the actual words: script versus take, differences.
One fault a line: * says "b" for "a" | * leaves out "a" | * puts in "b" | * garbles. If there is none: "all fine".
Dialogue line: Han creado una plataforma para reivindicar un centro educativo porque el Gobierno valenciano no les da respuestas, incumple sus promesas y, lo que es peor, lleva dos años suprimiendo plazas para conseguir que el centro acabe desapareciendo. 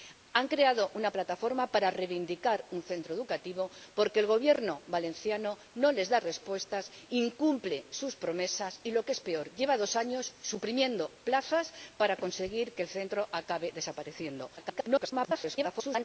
* garbles